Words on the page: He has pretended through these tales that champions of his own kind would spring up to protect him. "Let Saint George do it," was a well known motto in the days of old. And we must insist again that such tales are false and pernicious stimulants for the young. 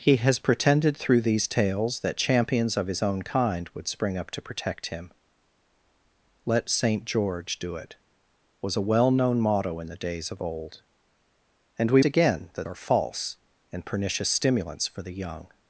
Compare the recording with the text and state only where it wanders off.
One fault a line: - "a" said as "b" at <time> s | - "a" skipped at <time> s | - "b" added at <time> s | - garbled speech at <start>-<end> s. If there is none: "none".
- "must insist" skipped at 12.0 s
- "such tales" skipped at 12.7 s